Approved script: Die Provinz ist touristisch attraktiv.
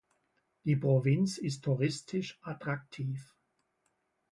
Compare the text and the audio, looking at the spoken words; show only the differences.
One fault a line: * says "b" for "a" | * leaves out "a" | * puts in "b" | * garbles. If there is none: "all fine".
all fine